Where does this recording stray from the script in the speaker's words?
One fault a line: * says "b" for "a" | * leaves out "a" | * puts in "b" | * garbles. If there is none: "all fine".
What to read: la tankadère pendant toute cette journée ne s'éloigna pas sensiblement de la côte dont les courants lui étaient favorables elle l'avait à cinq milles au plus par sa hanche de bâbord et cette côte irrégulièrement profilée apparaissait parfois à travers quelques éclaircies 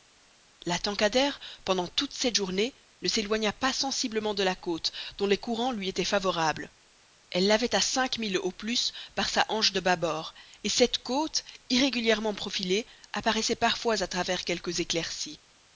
all fine